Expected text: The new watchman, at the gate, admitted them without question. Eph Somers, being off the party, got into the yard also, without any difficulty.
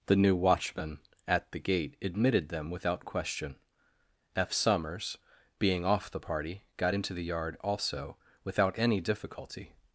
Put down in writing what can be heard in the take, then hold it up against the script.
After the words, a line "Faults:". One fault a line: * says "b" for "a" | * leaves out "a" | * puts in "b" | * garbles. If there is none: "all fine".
The new watchman, at the gate, admitted them without question. Eph Somers, being off the party, got into the yard also, without any difficulty.
Faults:
all fine